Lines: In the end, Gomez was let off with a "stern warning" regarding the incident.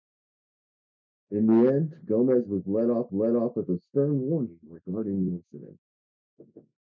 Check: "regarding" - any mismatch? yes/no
no